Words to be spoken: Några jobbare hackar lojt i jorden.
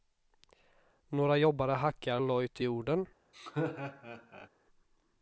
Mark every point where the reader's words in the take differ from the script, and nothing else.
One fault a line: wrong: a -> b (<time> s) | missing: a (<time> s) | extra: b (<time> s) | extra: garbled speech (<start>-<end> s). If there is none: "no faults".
no faults